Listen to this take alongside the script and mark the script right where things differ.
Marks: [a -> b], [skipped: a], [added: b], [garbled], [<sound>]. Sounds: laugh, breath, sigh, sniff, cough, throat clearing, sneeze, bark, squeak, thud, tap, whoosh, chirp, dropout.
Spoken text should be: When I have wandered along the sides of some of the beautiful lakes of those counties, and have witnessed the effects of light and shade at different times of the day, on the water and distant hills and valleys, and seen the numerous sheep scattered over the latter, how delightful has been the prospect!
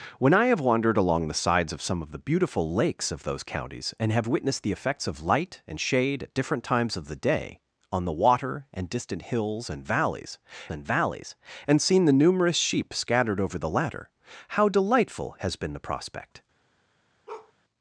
When I have wandered along the sides of some of the beautiful lakes of those counties, and have witnessed the effects of light and shade at different times of the day, on the water and distant hills and valleys, and [added: valleys and] seen the numerous sheep scattered over the latter, how delightful has been the prospect! [bark]